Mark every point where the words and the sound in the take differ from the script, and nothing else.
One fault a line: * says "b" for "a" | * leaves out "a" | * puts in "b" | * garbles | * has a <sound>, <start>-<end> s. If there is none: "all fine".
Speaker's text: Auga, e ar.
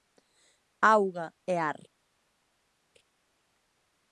all fine